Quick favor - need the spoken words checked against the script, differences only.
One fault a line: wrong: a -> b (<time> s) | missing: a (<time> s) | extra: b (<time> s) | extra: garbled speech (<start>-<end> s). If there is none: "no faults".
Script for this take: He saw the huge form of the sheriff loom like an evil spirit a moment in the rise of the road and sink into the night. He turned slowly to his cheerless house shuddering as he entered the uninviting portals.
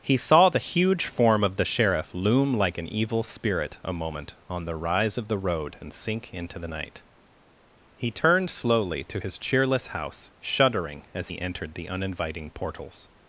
wrong: in -> on (4.5 s)